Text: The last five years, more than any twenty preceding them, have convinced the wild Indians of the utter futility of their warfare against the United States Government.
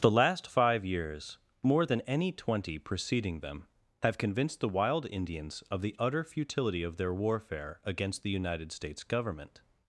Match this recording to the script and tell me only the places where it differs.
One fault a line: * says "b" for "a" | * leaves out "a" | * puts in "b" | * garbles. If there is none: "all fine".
all fine